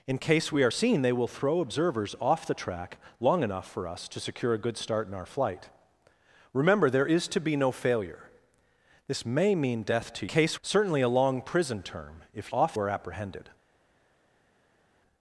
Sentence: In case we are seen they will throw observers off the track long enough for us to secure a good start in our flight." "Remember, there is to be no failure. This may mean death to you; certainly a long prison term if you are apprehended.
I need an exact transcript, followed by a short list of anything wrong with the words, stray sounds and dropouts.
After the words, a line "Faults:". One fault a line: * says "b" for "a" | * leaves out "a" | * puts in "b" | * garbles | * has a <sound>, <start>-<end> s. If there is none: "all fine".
In case we are seen they will throw observers off the track long enough for us to secure a good start in our flight." "Remember, there is to be no failure. This may mean death to case; certainly a long prison term if off are apprehended.
Faults:
* says "case" for "you"
* says "off" for "you"